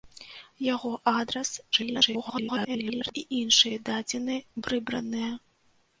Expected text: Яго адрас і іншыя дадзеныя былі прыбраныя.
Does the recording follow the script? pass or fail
fail